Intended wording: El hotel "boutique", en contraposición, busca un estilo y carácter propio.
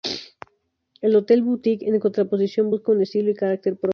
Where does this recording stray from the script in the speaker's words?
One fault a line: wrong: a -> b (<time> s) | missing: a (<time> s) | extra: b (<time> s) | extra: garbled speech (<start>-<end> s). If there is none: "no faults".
no faults